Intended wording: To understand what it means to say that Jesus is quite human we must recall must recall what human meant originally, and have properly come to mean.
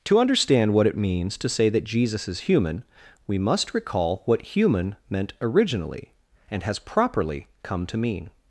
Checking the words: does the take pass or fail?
fail